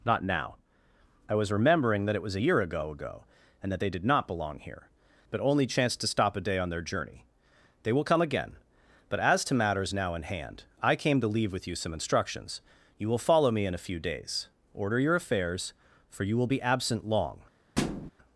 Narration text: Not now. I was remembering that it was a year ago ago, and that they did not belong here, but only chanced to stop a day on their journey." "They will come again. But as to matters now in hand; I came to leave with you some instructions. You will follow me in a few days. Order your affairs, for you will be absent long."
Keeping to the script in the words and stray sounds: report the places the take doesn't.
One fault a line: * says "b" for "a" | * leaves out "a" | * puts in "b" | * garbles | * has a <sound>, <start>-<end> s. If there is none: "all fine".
* has a thud, 17.8-18.1 s